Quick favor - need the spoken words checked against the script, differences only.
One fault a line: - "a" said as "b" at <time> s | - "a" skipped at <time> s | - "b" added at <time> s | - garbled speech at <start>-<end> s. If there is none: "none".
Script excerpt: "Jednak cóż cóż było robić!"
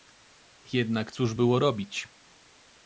- "cóż" skipped at 1.3 s